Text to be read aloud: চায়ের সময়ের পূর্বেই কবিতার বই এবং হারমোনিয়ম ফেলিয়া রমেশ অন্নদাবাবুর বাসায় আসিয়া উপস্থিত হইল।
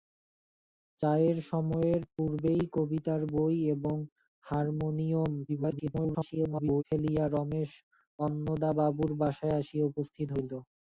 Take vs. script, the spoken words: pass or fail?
fail